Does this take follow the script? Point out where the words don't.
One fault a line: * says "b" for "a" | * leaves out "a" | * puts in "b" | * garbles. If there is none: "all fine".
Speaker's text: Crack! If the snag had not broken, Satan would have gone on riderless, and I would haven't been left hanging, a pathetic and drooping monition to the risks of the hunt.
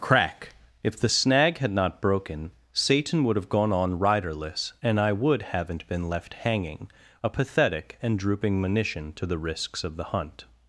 all fine